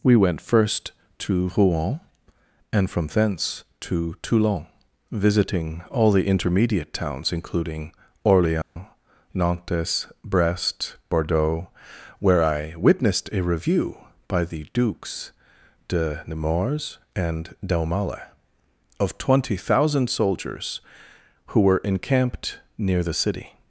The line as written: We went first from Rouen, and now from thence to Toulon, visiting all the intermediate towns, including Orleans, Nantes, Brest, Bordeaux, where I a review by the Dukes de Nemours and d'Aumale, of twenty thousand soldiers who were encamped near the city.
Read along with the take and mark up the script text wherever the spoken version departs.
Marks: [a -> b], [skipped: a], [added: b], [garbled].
We went first [from -> to] Rouen, and [skipped: now] from thence to Toulon, visiting all the intermediate towns, including Orleans, Nantes, Brest, Bordeaux, where I [added: witnessed] a review by the Dukes de Nemours and d'Aumale, of twenty thousand soldiers who were encamped near the city.